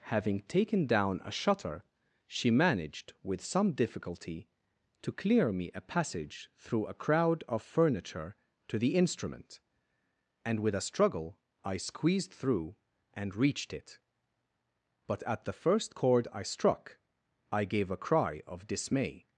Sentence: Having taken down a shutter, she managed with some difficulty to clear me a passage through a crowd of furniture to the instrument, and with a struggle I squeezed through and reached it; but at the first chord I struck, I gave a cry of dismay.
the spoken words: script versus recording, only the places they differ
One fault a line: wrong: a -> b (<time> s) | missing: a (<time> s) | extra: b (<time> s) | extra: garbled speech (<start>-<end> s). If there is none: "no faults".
no faults